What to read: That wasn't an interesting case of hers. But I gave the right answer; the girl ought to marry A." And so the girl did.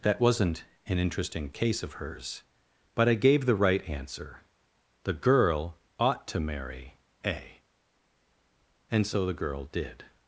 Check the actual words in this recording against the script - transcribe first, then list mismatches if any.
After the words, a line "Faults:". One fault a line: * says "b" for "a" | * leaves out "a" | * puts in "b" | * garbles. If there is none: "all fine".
That wasn't an interesting case of hers. But I gave the right answer; the girl ought to marry A." And so the girl did.
Faults:
all fine